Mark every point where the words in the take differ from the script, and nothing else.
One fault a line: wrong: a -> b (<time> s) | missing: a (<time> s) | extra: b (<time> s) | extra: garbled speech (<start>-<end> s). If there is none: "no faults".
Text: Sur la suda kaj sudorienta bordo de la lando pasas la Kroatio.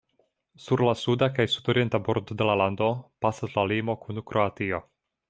extra: limo kun (3.7 s)